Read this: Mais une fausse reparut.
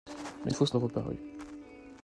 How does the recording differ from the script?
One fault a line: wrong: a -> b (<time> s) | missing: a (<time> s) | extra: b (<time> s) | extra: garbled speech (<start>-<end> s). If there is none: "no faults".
no faults